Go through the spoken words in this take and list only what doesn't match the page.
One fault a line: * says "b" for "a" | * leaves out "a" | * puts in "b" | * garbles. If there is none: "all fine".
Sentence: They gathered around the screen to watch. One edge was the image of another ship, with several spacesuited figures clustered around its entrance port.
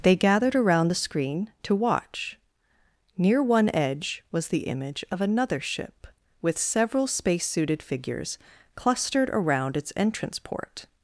* puts in "Near"